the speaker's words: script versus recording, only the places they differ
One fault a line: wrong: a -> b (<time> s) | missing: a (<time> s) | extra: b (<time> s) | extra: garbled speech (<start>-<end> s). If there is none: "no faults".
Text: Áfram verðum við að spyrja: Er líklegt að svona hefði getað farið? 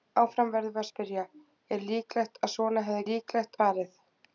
wrong: getað -> líklegt (3.1 s)